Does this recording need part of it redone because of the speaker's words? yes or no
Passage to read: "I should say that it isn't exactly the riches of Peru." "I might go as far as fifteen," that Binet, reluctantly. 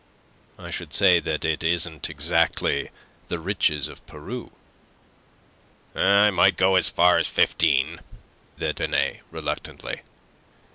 no